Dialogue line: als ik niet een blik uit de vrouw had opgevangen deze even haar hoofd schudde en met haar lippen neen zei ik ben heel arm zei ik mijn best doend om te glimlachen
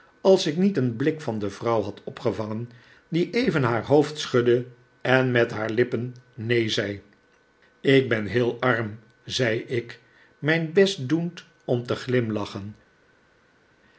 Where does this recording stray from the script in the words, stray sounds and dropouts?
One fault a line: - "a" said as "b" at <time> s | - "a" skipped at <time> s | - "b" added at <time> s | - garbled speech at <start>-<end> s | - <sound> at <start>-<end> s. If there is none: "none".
- "uit" said as "van" at 1.2 s
- "deze" said as "die" at 3.1 s